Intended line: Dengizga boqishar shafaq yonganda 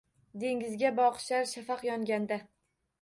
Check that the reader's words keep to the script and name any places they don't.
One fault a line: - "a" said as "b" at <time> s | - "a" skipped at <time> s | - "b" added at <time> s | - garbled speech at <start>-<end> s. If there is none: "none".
none